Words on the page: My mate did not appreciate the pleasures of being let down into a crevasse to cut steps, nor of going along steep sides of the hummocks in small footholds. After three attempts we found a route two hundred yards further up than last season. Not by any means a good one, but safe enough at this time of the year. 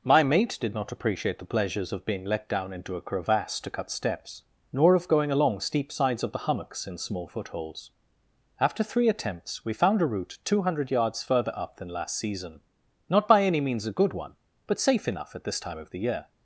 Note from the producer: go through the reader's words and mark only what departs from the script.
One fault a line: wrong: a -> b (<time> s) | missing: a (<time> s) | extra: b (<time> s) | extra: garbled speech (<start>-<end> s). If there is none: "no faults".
no faults